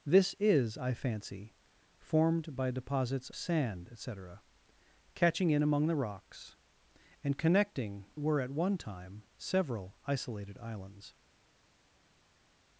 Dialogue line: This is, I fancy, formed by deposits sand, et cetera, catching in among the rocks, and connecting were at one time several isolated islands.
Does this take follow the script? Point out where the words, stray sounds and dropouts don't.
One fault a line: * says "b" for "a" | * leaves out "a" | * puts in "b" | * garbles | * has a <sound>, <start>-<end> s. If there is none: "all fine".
all fine